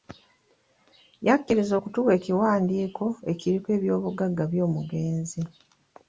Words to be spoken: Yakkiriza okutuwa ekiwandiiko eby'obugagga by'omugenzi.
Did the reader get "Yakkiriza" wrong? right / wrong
right